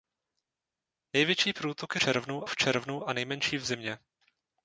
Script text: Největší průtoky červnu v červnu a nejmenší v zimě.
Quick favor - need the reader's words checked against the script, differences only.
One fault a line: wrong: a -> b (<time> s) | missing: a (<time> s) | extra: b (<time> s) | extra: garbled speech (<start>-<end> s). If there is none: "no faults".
no faults